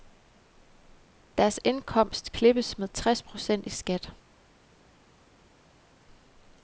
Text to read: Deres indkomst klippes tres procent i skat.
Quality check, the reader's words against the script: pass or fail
fail